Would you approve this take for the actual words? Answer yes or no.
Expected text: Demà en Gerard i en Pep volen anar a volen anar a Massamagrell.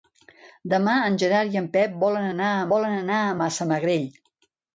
yes